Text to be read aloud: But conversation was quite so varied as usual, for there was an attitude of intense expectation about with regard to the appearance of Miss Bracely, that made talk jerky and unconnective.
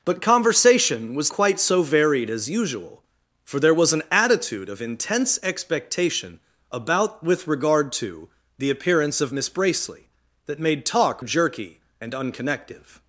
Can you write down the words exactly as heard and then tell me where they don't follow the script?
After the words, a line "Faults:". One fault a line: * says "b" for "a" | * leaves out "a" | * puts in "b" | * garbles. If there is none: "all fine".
But conversation was quite so varied as usual, for there was an attitude of intense expectation about with regard to the appearance of Miss Bracely, that made talk jerky and unconnective.
Faults:
all fine